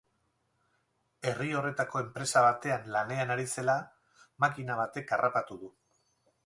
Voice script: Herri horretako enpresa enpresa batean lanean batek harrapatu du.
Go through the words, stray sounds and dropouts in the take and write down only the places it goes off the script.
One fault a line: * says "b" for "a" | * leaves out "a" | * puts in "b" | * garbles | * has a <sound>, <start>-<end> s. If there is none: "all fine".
* leaves out "enpresa"
* puts in "ari zela makina"